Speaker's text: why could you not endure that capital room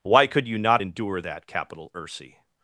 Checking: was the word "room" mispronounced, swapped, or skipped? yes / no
yes